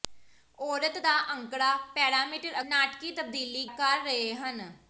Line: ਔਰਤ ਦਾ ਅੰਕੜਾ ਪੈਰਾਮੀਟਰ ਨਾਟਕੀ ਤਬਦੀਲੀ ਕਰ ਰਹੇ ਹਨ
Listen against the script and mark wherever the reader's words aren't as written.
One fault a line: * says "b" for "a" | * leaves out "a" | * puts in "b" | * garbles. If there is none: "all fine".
all fine